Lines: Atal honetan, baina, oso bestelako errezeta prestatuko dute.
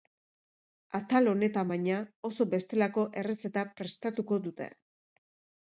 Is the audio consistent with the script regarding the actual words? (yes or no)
yes